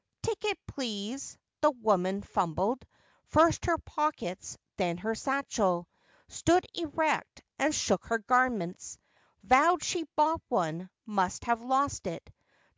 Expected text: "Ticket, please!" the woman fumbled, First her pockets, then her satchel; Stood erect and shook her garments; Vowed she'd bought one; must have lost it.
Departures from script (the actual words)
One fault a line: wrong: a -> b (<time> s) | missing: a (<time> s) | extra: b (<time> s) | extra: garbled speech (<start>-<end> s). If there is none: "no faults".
no faults